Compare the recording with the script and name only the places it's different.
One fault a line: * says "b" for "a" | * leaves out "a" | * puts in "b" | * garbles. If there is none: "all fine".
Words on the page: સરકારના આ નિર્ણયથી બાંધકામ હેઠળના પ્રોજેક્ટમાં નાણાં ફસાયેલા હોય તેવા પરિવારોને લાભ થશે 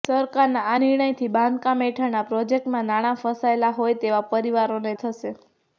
* leaves out "લાભ"